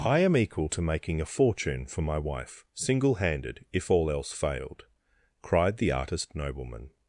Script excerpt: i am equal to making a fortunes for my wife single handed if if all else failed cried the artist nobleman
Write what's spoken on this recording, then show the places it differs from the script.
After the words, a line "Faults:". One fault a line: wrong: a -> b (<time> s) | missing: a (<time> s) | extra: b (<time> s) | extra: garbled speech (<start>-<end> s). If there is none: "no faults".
i am equal to making a fortune for my wife single handed if all else failed cried the artist nobleman
Faults:
wrong: fortunes -> fortune (1.3 s)
missing: if (3.9 s)